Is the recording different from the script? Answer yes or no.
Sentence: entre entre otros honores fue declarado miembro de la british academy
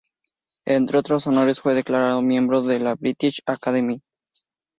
yes